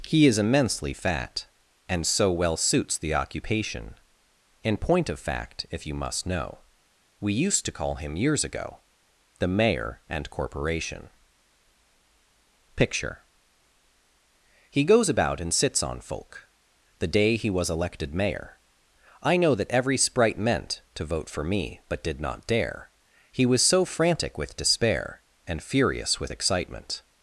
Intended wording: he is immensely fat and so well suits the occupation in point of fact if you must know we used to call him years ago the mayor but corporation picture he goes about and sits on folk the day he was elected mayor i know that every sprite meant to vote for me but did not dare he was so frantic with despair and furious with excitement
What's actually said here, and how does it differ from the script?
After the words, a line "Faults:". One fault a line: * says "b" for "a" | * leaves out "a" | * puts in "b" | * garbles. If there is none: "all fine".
he is immensely fat and so well suits the occupation in point of fact if you must know we used to call him years ago the mayor and corporation picture he goes about and sits on folk the day he was elected mayor i know that every sprite meant to vote for me but did not dare he was so frantic with despair and furious with excitement
Faults:
* says "and" for "but"